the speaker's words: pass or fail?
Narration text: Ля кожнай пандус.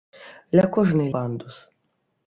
pass